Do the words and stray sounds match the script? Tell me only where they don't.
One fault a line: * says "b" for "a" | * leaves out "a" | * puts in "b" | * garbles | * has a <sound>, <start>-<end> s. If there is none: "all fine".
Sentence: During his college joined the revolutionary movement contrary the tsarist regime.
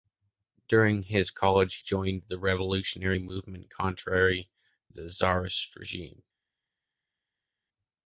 all fine